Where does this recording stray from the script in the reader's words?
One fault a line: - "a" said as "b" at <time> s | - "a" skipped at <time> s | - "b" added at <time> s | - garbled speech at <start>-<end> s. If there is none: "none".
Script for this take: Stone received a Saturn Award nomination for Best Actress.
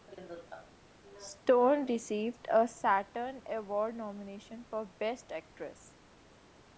none